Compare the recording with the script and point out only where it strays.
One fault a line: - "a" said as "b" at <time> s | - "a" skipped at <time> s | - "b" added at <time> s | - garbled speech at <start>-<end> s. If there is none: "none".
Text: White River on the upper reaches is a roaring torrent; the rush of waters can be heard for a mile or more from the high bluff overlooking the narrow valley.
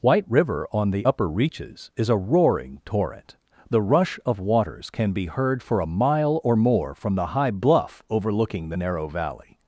none